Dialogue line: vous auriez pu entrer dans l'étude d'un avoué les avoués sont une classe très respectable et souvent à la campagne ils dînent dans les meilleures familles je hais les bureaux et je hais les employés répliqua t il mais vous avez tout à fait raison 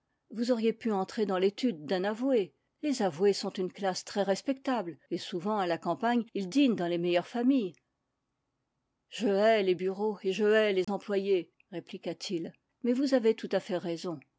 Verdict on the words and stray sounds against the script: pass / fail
fail